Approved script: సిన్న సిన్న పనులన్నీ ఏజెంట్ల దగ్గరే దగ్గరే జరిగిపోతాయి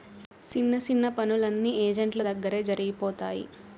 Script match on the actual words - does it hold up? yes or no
no